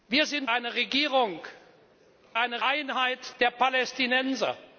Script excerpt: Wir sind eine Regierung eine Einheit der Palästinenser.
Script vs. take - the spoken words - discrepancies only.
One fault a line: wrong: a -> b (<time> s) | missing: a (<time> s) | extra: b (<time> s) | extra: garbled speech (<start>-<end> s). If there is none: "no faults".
no faults